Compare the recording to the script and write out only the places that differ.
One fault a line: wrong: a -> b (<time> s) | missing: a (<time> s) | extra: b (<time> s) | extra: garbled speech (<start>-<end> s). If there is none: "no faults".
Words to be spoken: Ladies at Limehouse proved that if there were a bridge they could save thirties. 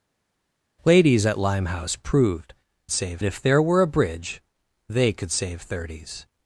wrong: that -> save (2.9 s)